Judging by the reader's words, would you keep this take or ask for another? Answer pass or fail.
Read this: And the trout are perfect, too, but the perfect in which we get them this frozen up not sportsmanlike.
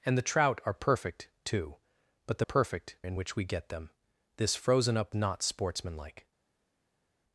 pass